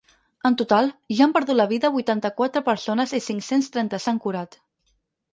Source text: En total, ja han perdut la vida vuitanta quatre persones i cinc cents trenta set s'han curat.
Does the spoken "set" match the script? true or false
false